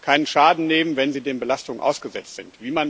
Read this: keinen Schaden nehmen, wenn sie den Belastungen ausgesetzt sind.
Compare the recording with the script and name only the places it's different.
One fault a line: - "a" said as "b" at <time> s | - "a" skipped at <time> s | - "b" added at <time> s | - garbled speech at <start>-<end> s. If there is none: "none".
none